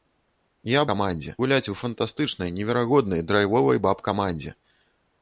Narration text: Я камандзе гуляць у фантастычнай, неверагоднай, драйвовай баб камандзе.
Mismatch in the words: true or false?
false